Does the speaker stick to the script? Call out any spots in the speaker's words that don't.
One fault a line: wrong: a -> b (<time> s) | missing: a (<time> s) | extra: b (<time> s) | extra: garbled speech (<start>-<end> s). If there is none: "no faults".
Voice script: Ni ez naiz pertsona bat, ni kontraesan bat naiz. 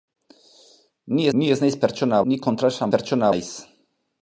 extra: ni (1.4 s)
missing: bat (2.2 s)
wrong: bat -> pertsona (2.9 s)